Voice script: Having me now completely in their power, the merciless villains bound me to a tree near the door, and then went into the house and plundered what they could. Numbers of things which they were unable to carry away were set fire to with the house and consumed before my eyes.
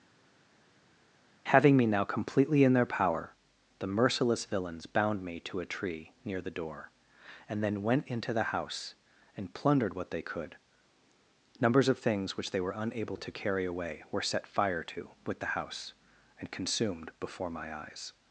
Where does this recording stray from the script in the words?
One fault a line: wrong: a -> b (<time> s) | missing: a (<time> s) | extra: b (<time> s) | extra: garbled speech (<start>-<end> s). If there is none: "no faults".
no faults